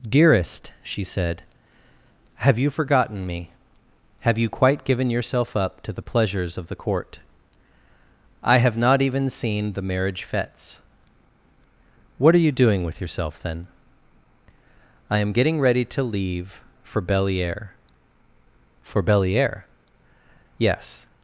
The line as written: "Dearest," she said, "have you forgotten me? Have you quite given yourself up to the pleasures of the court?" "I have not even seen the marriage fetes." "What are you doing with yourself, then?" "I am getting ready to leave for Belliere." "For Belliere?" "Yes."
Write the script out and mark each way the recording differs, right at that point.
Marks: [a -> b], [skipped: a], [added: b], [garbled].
"Dearest," she said, "have you forgotten me? Have you quite given yourself up to the pleasures of the court?" "I have not even seen the marriage fetes." "What are you doing with yourself, then?" "I am getting ready to leave for Belliere." "For Belliere?" "Yes."